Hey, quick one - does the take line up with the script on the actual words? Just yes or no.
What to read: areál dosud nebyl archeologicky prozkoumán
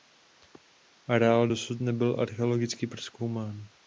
yes